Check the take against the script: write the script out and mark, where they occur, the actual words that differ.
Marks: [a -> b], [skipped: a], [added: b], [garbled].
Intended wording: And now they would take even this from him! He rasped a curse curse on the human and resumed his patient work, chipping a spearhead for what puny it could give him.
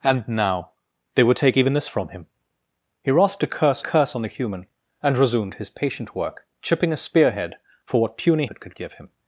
And now they would take even this from him! He rasped a curse curse on the human and resumed his patient work, chipping a spearhead for what puny it could give him.